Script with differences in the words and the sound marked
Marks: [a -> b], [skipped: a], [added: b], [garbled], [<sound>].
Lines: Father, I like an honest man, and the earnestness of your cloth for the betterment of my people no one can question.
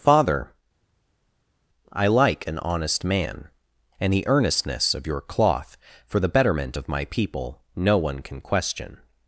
Father, I like an honest man, and the earnestness of your cloth for the betterment of my people no one can question.